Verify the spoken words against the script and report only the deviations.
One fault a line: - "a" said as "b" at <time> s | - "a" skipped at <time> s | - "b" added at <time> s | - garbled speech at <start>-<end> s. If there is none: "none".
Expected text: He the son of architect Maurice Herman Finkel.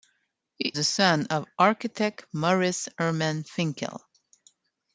none